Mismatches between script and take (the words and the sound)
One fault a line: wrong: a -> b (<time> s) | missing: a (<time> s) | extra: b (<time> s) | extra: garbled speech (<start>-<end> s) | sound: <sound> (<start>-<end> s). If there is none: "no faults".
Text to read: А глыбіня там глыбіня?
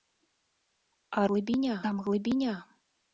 no faults